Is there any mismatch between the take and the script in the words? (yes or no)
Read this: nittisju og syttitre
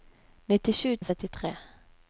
no